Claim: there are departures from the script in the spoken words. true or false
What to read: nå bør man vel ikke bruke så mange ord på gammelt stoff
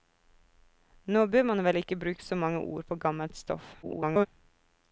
true